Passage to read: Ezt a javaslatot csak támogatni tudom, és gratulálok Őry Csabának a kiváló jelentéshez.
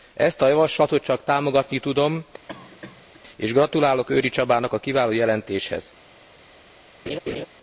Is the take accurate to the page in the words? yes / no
yes